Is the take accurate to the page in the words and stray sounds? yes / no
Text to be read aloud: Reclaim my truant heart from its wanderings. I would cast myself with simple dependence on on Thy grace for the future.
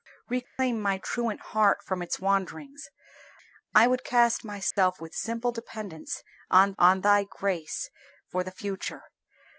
no